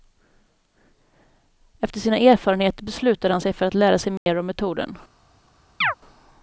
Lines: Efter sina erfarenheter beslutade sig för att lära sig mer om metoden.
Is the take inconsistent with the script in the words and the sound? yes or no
yes